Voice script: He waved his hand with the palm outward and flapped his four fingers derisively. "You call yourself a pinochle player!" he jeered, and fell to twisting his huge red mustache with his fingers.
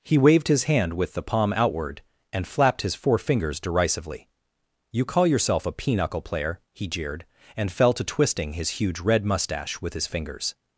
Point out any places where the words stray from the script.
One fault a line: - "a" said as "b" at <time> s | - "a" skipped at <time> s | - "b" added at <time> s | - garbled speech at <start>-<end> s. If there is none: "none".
none